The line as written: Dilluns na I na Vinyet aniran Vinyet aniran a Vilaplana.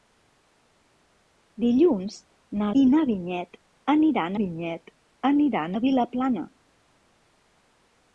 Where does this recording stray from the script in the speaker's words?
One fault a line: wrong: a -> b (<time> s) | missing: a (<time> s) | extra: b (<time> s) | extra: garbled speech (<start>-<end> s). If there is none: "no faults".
no faults